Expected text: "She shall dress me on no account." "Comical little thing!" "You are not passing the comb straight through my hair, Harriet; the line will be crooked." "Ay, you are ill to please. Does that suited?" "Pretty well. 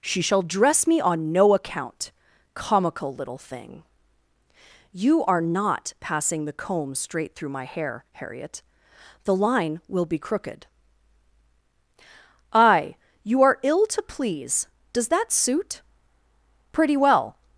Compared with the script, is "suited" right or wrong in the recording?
wrong